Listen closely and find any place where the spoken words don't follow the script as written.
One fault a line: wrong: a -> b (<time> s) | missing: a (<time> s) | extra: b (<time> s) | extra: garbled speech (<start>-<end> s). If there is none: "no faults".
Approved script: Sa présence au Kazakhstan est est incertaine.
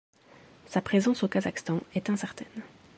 missing: est (2.1 s)